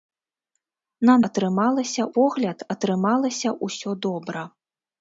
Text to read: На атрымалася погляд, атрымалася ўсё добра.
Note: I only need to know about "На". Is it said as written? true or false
true